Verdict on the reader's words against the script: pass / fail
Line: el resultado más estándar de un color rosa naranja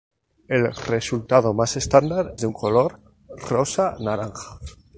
pass